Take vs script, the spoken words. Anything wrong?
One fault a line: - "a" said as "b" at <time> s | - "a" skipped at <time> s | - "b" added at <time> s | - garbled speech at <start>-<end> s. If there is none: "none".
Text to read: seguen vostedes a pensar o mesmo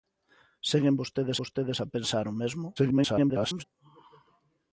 - "vostedes" added at 1.4 s
- garbled speech at 2.8-3.6 s